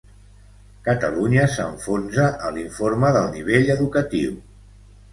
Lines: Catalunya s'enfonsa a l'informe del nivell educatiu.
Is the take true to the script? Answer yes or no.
yes